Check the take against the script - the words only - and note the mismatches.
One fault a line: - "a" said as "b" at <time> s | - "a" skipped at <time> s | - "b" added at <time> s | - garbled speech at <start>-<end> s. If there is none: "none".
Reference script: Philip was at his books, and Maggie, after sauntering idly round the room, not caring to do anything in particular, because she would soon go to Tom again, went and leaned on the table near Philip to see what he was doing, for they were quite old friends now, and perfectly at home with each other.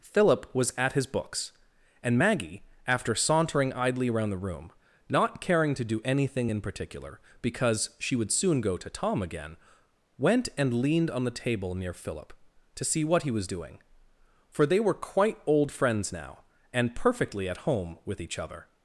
- "round" said as "around" at 4.1 s